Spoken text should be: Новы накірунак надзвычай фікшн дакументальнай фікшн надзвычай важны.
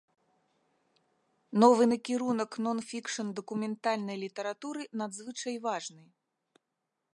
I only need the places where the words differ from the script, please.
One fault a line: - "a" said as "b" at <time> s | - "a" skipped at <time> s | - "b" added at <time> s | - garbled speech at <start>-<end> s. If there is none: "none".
- "надзвычай" said as "нон" at 2.7 s
- "фікшн" said as "літаратуры" at 4.2 s